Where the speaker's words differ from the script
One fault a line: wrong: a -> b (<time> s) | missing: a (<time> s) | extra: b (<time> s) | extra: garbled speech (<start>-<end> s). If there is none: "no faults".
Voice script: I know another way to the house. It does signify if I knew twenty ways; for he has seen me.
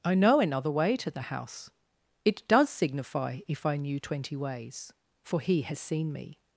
no faults